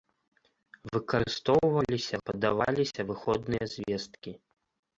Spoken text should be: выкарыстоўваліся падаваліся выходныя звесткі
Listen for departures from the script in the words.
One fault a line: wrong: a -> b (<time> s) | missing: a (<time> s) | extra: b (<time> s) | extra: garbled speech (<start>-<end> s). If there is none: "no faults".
no faults